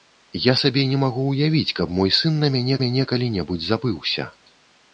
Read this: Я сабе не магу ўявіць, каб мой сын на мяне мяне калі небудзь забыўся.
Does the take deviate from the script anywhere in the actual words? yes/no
no